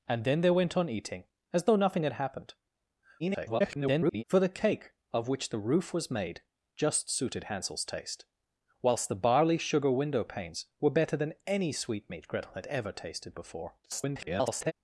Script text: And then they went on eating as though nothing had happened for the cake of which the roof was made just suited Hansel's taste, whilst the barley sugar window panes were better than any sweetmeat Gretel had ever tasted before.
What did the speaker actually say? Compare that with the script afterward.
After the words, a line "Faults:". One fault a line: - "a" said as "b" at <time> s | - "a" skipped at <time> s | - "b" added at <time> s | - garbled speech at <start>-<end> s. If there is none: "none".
And then they went on eating as though nothing had happened [garbled] for the cake of which the roof was made just suited Hansel's taste, whilst the barley sugar window panes were better than any sweetmeat Gretel had ever tasted before. [garbled]
Faults:
- garbled speech at 3.2-4.2 s
- garbled speech at 13.8-14.7 s